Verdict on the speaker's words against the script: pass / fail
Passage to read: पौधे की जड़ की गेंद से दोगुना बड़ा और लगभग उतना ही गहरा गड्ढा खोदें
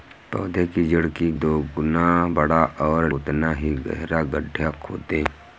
fail